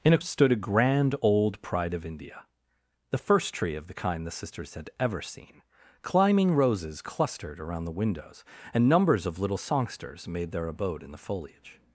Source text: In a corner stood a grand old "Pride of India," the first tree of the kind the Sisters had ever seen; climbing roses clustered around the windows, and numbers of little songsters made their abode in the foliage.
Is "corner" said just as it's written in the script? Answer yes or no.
no